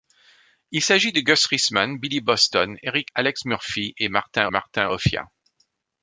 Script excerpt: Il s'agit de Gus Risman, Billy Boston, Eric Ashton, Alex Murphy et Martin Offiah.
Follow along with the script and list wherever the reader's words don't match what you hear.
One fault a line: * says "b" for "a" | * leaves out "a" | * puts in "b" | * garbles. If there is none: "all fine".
* leaves out "Ashton"
* puts in "Martin"